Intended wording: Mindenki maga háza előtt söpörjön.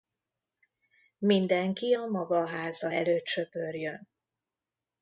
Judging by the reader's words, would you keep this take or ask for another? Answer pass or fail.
fail